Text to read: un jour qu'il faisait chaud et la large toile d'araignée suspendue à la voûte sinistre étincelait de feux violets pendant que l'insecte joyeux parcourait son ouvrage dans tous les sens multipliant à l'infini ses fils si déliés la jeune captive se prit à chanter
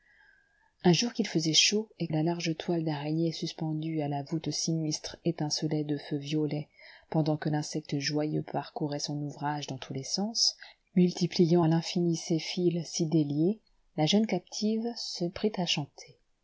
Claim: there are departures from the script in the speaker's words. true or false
false